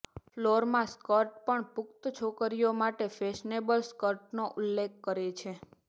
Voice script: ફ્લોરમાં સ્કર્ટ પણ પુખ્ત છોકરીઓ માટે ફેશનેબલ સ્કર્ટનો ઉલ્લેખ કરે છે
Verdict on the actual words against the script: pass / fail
pass